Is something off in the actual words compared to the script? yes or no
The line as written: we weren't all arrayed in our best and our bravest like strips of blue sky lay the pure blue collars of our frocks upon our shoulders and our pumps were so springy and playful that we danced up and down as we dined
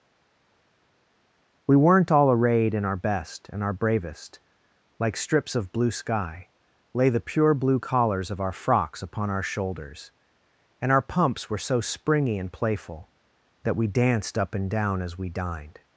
no